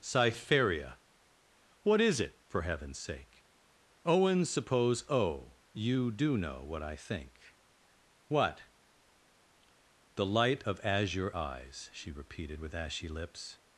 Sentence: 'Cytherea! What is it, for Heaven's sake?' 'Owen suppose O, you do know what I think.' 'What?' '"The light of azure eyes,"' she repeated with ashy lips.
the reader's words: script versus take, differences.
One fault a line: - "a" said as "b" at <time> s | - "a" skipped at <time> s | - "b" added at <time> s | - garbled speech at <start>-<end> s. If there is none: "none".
none